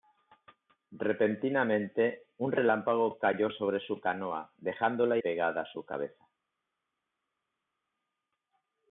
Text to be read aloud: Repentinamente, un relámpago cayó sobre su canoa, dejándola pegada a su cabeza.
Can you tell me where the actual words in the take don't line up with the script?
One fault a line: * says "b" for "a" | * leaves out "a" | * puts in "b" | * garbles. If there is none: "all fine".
all fine